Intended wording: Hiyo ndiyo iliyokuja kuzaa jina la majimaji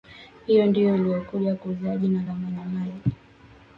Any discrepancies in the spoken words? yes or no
no